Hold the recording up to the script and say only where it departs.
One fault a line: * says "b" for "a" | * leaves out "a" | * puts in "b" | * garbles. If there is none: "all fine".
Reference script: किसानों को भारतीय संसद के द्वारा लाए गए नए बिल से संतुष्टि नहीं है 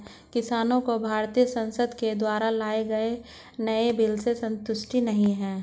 all fine